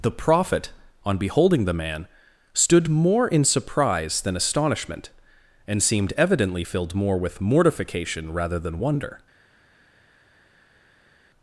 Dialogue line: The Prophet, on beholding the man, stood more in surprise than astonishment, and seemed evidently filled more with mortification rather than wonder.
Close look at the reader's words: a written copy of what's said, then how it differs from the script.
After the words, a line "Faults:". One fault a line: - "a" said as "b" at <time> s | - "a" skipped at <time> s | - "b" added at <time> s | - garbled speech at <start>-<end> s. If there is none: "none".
The Prophet, on beholding the man, stood more in surprise than astonishment, and seemed evidently filled more with mortification rather than wonder.
Faults:
none